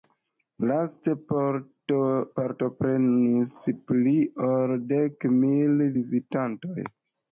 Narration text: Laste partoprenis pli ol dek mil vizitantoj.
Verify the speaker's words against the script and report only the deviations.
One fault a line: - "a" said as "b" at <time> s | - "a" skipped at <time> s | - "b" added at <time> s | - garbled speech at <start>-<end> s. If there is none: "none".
none